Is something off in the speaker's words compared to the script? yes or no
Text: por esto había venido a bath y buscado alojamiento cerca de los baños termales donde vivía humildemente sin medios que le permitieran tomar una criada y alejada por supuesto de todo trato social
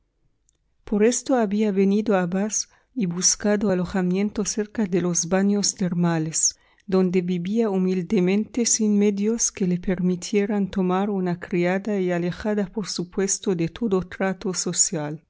no